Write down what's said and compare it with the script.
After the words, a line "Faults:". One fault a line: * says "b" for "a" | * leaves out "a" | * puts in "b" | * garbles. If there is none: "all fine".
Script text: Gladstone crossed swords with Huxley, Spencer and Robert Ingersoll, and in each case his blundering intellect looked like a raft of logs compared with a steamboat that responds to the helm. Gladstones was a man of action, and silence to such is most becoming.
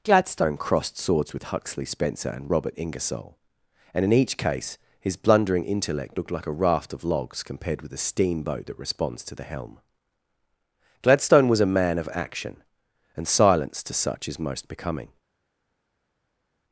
Gladstone crossed swords with Huxley, Spencer and Robert Ingersoll, and in each case his blundering intellect looked like a raft of logs compared with a steamboat that responds to the helm. Gladstone was a man of action, and silence to such is most becoming.
Faults:
* says "Gladstone" for "Gladstones"